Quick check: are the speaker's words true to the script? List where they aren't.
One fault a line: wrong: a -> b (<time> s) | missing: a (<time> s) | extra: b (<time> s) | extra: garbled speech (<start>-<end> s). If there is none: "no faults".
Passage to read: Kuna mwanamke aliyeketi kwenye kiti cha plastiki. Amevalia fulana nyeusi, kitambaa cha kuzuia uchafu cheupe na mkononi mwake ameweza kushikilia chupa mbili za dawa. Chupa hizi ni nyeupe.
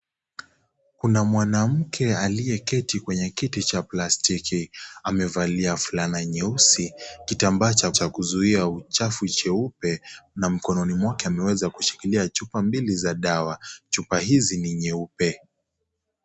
extra: cha (7.9 s)